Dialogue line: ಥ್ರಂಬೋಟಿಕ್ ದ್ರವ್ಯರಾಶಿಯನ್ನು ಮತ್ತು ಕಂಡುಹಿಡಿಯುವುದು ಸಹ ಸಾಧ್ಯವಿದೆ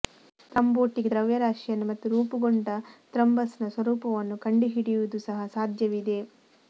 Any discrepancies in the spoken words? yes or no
yes